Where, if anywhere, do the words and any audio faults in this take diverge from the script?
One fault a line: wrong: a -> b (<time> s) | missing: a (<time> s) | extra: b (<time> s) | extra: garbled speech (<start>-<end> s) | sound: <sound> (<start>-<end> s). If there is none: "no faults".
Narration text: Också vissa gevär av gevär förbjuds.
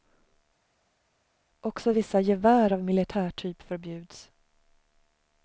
wrong: gevär -> militärtyp (2.8 s)